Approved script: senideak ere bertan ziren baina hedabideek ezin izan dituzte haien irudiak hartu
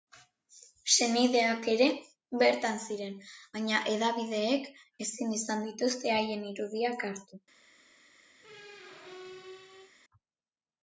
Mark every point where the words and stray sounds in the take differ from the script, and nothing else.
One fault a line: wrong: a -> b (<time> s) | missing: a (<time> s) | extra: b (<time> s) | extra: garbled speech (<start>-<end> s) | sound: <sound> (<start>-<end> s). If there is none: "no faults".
sound: squeak (8.4-9.9 s)